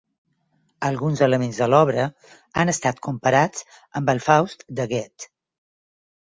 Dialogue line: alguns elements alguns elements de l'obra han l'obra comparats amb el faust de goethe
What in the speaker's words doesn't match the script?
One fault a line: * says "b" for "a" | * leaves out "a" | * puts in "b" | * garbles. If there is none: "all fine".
* leaves out "alguns elements"
* says "estat" for "l'obra"